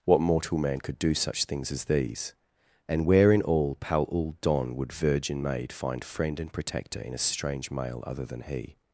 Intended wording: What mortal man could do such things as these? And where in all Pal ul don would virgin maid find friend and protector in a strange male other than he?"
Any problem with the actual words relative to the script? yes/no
no